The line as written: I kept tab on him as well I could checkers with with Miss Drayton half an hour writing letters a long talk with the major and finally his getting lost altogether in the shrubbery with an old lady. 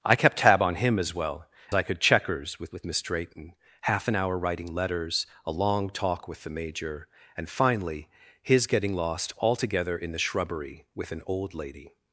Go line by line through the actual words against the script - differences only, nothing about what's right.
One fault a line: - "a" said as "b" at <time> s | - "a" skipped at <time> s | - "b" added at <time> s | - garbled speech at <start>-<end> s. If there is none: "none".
none